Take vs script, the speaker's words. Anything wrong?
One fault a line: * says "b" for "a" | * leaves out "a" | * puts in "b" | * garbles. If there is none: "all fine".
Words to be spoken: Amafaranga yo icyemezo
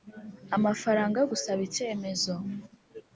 * puts in "gusaba"